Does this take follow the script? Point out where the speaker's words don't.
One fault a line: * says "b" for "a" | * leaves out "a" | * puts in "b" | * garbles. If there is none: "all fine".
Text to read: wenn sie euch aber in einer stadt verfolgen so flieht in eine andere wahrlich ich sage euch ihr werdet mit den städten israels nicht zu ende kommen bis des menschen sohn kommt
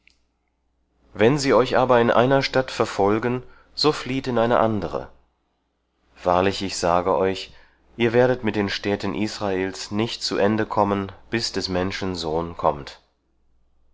all fine